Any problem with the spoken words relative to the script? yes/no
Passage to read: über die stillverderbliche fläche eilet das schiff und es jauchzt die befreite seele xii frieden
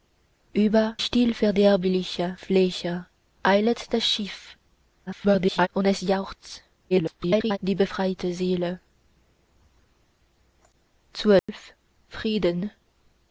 yes